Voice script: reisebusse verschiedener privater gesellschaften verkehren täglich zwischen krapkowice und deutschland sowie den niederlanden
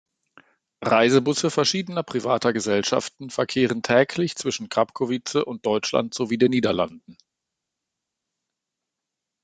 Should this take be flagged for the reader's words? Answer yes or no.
no